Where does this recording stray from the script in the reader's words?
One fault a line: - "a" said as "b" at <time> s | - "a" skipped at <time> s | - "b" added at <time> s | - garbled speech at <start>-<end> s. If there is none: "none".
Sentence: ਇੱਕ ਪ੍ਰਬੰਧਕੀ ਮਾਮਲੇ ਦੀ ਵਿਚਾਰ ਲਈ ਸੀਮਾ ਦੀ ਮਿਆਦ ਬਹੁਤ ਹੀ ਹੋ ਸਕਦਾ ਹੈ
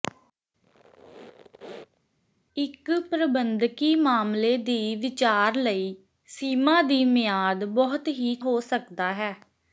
none